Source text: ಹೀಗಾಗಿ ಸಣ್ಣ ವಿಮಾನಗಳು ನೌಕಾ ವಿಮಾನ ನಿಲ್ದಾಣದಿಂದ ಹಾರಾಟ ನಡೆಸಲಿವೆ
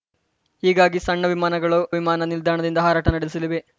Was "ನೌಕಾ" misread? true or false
true